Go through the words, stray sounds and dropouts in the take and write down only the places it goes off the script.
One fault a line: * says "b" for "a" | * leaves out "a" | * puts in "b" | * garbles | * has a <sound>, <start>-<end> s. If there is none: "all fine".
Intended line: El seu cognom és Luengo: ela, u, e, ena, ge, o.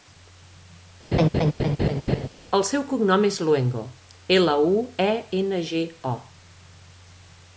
* has a laugh, 1.1-2.3 s